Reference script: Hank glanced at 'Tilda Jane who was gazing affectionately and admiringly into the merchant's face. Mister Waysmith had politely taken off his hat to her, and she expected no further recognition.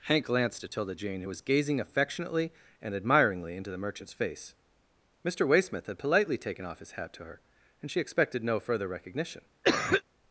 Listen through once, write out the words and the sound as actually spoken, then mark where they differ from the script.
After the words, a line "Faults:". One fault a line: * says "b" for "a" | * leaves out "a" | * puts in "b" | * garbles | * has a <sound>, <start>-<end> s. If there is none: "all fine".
Hank glanced at 'Tilda Jane who was gazing affectionately and admiringly into the merchant's face. Mister Waysmith had politely taken off his hat to her, and she expected no further recognition.
Faults:
* has a cough, 9.6-10.0 s